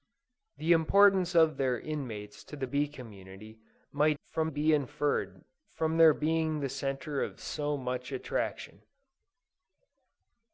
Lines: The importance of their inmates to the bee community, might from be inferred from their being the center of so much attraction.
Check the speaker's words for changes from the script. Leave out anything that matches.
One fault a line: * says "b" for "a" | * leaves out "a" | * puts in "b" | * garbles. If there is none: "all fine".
all fine